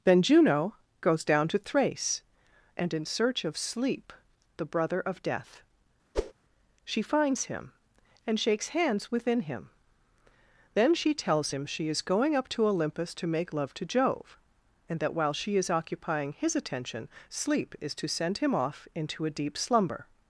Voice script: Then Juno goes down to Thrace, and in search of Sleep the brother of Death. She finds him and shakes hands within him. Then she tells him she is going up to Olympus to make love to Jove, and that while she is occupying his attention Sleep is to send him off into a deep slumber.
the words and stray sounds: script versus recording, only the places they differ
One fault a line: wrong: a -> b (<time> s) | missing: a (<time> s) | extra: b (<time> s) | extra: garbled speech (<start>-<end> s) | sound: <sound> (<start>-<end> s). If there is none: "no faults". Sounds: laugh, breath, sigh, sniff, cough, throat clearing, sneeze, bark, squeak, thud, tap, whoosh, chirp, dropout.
sound: whoosh (6.1-6.3 s)